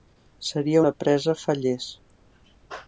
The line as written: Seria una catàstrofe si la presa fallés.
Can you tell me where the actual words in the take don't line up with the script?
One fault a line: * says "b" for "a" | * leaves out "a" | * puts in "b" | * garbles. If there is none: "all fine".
* leaves out "una catàstrofe si"